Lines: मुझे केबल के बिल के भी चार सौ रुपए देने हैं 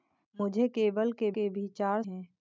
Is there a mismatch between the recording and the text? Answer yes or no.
yes